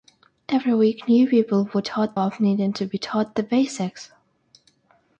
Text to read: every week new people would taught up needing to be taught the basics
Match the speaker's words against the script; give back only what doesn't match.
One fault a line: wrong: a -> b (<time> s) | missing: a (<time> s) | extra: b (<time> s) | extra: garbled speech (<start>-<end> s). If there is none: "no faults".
no faults